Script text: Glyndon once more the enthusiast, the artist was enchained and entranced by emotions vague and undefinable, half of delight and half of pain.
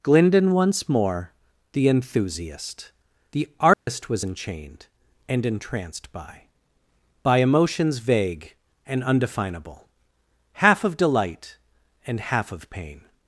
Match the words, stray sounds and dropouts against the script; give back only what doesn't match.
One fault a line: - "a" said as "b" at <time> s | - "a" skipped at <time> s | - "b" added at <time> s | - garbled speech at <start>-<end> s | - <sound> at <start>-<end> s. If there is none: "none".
- dropout at 3.7-3.9 s
- "by" added at 7.2 s